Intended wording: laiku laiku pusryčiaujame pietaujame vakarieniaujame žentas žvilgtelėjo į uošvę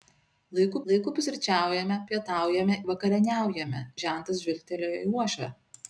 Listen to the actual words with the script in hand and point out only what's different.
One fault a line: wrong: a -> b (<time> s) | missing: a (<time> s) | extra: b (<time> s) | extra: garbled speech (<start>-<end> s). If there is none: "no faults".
no faults